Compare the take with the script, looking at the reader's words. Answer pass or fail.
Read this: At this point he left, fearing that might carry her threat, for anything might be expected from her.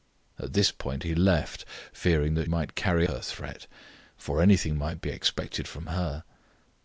pass